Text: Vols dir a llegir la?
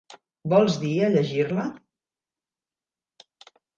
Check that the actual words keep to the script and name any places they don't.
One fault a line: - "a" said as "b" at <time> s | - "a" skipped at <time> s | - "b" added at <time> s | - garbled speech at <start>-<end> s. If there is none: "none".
none